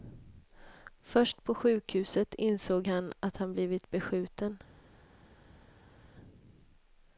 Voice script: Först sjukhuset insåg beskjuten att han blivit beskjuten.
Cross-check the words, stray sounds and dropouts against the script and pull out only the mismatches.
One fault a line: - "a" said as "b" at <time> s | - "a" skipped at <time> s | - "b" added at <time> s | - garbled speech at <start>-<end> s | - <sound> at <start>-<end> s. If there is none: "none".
- "på" added at 1.4 s
- "beskjuten" said as "han" at 2.9 s